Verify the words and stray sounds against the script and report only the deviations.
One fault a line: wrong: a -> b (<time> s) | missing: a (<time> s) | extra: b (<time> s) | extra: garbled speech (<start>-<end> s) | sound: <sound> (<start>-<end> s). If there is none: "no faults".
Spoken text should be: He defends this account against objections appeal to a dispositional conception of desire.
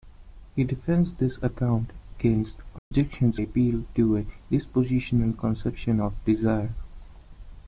sound: dropout (2.8-2.9 s)